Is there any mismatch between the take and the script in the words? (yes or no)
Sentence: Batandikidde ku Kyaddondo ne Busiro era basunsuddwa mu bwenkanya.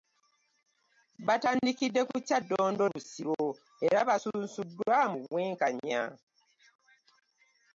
yes